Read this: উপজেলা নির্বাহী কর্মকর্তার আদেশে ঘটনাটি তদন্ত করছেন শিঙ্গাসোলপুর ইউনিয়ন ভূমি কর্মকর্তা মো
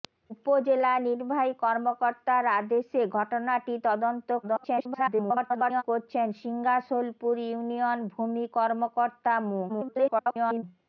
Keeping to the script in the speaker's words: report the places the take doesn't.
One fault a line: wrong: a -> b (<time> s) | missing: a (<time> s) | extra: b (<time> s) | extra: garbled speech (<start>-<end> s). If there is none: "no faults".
extra: garbled speech (4.4-5.8 s)
extra: garbled speech (9.7-10.6 s)